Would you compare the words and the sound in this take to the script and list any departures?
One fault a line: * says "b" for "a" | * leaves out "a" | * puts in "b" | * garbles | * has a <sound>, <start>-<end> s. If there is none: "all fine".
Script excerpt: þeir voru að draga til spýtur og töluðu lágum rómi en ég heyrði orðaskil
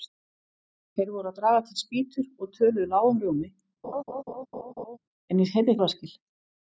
* has a laugh, 3.8-5.0 s